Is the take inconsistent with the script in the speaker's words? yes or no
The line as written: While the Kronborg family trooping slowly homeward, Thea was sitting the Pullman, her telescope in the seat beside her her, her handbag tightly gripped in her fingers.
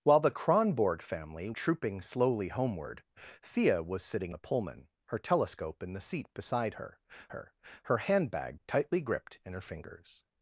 no